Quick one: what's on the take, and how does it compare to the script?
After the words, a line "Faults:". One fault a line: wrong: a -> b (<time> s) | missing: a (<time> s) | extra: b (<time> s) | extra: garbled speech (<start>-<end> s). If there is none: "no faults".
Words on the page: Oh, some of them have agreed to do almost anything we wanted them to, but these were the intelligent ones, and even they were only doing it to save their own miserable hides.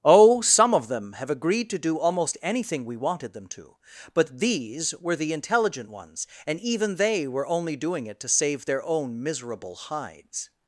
Oh, some of them have agreed to do almost anything we wanted them to, but these were the intelligent ones, and even they were only doing it to save their own miserable hides.
Faults:
no faults